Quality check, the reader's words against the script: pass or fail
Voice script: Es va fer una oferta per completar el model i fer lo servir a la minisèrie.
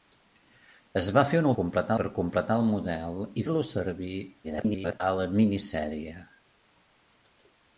fail